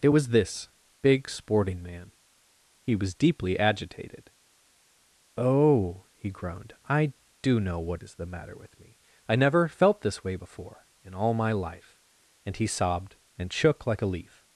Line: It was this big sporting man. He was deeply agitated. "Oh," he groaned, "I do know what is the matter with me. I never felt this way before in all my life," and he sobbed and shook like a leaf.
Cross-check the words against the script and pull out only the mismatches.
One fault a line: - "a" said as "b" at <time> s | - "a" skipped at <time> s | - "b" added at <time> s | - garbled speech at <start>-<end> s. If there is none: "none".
none